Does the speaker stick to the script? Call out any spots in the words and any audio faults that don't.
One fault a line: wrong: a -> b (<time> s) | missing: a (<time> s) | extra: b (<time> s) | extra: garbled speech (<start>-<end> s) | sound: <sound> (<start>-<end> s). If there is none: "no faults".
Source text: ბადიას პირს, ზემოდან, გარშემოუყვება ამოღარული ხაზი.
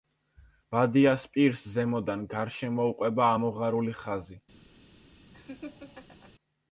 sound: laugh (5.3-6.3 s)